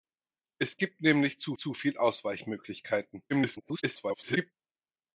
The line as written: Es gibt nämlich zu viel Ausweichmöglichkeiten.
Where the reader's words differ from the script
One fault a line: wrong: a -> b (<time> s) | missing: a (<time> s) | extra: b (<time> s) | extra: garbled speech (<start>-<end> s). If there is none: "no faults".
extra: zu (1.6 s)
extra: garbled speech (3.3-4.5 s)